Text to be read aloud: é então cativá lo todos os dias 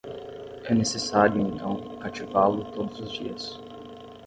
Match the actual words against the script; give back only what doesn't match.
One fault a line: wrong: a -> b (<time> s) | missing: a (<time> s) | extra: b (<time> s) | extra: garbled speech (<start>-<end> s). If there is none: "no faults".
extra: necessário (0.7 s)